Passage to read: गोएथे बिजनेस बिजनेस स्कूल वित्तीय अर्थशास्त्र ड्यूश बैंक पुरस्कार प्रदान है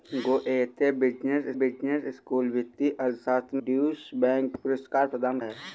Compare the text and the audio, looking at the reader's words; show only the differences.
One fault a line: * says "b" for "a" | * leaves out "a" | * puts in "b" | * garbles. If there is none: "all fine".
all fine